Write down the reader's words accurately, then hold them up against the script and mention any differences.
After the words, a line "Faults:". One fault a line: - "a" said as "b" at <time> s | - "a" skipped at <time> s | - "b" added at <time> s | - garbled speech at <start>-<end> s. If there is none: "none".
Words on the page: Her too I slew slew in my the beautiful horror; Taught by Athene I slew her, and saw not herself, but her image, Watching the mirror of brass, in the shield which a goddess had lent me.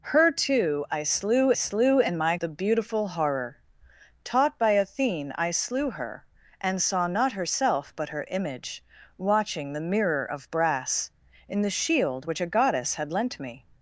Her too I slew slew in my the beautiful horror; Taught by Athene I slew her, and saw not herself, but her image, Watching the mirror of brass, in the shield which a goddess had lent me.
Faults:
none